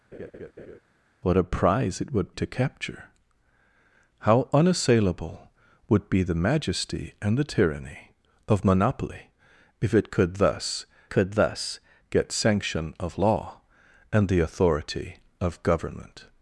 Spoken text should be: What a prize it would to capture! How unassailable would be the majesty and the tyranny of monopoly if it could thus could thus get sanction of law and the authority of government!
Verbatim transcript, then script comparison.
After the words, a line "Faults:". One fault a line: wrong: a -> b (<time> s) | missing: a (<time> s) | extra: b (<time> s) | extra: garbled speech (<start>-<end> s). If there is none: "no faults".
What a prize it would to capture! How unassailable would be the majesty and the tyranny of monopoly if it could thus could thus get sanction of law and the authority of government!
Faults:
no faults